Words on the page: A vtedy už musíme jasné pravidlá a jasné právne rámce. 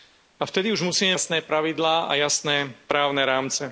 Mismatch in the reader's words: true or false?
false